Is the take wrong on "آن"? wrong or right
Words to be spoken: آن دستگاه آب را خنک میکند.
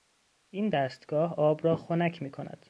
wrong